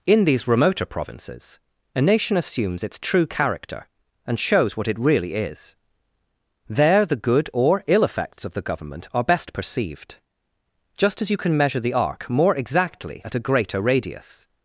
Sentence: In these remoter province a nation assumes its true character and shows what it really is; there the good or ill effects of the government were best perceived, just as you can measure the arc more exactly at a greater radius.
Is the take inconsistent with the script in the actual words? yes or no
yes